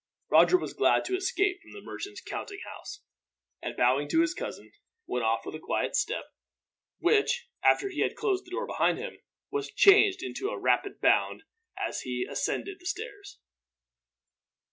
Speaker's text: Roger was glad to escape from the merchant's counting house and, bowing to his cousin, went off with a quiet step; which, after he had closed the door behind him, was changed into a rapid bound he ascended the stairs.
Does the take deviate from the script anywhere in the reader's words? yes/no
yes